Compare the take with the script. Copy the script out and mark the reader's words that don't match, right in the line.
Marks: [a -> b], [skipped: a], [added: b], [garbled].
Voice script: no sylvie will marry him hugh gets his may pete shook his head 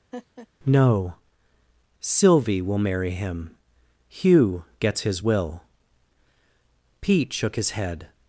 no sylvie will marry him hugh gets his [may -> will] pete shook his head